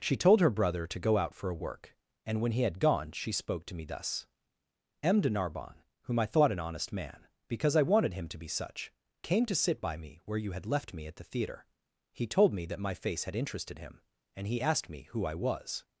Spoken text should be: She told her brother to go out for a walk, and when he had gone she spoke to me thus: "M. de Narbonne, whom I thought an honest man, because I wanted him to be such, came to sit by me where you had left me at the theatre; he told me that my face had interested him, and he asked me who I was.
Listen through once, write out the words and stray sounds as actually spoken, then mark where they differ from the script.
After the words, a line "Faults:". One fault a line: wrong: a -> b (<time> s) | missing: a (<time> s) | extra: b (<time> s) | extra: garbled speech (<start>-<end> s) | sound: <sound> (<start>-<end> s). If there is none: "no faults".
She told her brother to go out for a work, and when he had gone she spoke to me thus: "M. de Narbonne, whom I thought an honest man, because I wanted him to be such, came to sit by me where you had left me at the theatre; he told me that my face had interested him, and he asked me who I was.
Faults:
wrong: walk -> work (1.6 s)